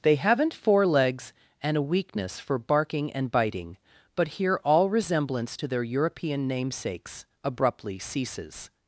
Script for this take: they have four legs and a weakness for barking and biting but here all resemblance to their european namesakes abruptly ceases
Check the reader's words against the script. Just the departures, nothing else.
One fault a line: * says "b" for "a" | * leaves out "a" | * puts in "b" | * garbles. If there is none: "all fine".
* says "haven't" for "have"